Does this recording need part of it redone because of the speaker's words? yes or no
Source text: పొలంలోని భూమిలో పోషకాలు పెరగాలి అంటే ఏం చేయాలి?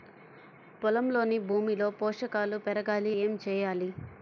yes